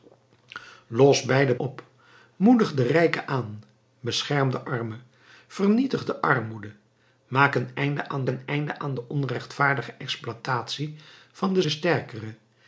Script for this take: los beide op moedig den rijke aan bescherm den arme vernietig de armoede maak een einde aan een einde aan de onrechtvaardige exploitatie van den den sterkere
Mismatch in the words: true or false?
false